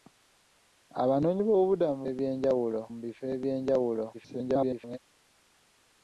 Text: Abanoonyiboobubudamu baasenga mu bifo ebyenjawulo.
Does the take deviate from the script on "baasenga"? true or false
true